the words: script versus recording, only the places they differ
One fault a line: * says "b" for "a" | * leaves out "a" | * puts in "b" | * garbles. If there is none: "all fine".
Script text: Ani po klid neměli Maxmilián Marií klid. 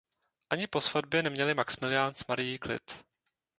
* says "svatbě" for "klid"
* puts in "s"